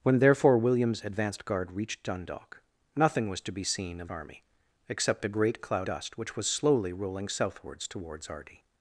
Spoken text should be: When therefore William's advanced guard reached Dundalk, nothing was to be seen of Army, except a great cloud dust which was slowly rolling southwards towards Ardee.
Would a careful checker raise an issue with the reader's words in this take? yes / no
no